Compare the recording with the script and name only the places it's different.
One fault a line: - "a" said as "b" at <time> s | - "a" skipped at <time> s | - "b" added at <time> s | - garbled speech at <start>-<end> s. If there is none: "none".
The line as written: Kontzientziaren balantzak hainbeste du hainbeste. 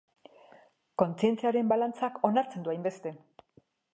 - "hainbeste" said as "onartzen" at 2.3 s